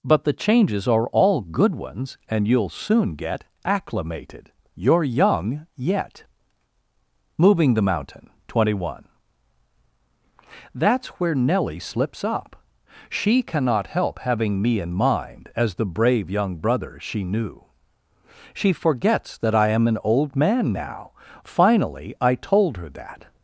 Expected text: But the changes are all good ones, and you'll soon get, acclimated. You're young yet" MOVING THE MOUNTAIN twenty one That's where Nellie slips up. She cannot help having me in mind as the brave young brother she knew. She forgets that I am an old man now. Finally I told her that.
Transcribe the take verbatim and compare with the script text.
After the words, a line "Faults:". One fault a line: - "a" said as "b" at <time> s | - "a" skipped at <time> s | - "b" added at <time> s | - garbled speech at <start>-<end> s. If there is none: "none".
But the changes are all good ones, and you'll soon get, acclimated. You're young yet" MOVING THE MOUNTAIN twenty one That's where Nellie slips up. She cannot help having me in mind as the brave young brother she knew. She forgets that I am an old man now. Finally I told her that.
Faults:
none